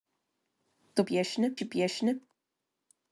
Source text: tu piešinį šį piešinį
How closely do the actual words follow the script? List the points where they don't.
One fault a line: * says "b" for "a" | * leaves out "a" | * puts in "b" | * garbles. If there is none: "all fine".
all fine